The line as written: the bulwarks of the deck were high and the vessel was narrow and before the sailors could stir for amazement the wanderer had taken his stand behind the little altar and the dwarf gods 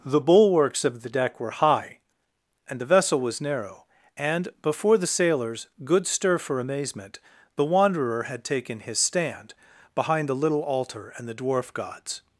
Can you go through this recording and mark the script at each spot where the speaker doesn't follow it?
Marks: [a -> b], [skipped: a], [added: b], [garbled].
the bulwarks of the deck were high and the vessel was narrow and before the sailors [could -> good] stir for amazement the wanderer had taken his stand behind the little altar and the dwarf gods